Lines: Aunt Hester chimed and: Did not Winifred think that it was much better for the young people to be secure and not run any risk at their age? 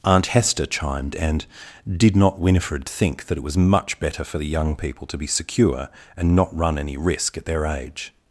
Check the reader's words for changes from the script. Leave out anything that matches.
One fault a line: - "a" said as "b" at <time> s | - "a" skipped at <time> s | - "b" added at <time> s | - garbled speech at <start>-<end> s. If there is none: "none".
none